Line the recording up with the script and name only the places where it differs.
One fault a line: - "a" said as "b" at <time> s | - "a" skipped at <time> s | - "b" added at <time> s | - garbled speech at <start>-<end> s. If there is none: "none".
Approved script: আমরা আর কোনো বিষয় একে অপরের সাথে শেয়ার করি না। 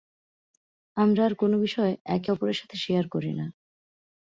none